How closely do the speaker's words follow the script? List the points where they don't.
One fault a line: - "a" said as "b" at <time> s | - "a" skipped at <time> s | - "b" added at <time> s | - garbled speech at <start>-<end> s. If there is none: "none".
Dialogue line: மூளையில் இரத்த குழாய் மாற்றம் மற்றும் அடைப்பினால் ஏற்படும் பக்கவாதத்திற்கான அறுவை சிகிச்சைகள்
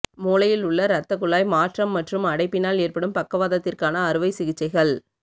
- "உள்ள" added at 0.7 s